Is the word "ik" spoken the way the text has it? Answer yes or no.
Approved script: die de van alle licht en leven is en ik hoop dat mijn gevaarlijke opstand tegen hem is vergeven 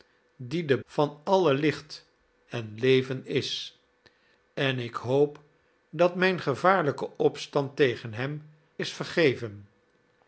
yes